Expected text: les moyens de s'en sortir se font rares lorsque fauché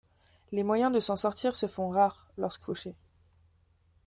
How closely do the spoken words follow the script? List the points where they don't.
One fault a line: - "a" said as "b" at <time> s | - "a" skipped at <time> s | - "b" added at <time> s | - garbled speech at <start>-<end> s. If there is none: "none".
none